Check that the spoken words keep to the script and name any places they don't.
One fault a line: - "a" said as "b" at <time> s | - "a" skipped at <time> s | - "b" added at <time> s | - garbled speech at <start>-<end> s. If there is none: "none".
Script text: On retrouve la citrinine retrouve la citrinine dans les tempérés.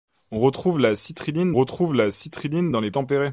none